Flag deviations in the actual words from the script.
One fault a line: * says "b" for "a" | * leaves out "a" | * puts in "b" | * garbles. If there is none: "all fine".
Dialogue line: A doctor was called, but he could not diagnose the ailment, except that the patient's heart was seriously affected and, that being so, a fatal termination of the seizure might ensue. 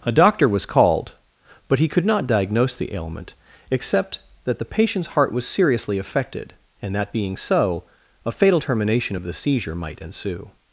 all fine